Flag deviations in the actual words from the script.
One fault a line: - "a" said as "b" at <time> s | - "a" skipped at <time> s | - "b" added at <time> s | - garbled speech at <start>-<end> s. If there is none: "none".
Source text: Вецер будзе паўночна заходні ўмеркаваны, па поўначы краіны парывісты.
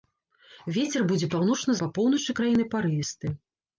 - "заходні ўмеркаваны" skipped at 1.8 s